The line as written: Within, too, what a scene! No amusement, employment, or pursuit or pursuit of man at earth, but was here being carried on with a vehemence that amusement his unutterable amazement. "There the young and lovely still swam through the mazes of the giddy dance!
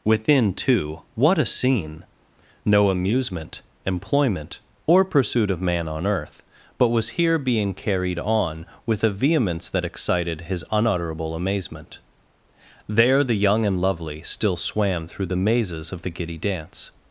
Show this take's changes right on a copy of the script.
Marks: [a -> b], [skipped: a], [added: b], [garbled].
Within, too, what a scene! No amusement, employment, or pursuit [skipped: or pursuit] of man [at -> on] earth, but was here being carried on with a vehemence that [amusement -> excited] his unutterable amazement. "There the young and lovely still swam through the mazes of the giddy dance!